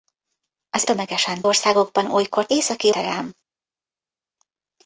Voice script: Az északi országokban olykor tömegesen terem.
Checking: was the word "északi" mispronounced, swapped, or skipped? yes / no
yes